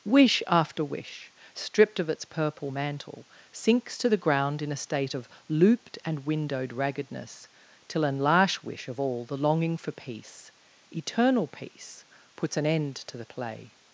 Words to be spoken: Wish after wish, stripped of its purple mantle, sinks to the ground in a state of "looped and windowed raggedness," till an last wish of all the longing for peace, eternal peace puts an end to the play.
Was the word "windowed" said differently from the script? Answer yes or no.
no